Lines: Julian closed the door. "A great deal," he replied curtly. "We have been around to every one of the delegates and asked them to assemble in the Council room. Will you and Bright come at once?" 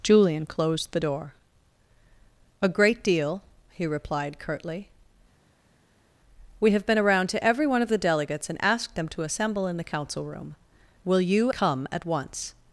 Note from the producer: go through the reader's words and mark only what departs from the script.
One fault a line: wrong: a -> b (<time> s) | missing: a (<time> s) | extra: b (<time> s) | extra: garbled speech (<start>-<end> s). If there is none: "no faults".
missing: and Bright (11.5 s)